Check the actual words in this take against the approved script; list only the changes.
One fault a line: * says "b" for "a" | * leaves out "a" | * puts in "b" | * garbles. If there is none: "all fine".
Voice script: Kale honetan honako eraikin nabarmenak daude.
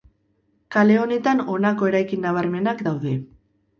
all fine